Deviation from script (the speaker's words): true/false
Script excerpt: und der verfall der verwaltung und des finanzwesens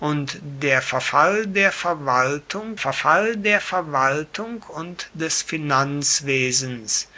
true